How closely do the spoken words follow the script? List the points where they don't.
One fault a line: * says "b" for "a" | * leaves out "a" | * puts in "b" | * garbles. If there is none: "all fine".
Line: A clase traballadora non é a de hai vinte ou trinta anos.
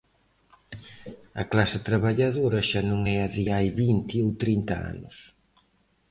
* puts in "xa"